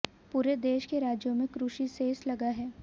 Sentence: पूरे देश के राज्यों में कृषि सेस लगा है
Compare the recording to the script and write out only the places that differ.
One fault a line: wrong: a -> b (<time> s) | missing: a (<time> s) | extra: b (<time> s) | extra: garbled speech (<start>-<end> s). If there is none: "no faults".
no faults